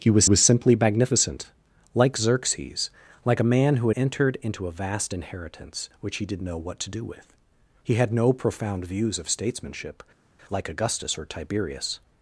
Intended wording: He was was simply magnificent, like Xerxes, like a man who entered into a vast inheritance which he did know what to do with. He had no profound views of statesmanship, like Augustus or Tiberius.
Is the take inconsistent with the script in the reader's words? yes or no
no